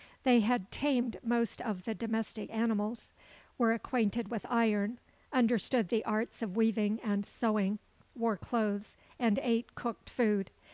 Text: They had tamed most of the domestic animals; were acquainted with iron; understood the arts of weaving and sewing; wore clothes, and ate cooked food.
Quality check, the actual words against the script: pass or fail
pass